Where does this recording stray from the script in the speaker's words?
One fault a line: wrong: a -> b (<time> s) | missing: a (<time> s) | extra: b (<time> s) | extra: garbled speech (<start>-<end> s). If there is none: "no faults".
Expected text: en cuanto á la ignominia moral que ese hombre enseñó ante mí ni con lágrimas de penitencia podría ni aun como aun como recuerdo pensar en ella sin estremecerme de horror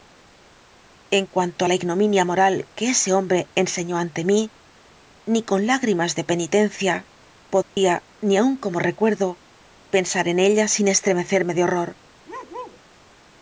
missing: aun como (8.8 s)